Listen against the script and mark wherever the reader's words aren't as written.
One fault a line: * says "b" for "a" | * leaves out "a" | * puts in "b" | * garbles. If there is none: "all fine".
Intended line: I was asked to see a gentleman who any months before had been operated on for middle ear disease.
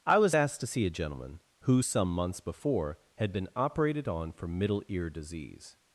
* says "some" for "any"